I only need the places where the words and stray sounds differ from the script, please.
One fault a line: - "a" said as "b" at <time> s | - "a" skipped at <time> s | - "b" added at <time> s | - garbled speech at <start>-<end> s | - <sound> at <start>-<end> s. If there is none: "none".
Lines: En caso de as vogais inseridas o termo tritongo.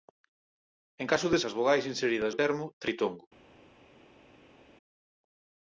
none